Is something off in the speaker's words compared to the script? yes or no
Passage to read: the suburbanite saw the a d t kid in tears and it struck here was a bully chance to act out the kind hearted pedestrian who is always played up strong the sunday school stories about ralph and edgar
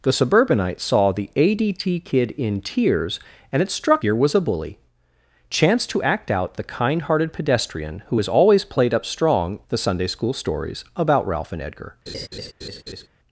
no